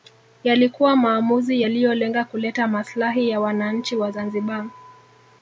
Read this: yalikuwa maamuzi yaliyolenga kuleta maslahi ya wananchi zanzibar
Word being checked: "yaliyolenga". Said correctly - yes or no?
yes